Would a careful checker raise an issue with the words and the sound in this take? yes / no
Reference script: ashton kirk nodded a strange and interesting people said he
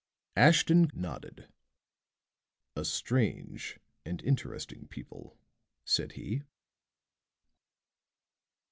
yes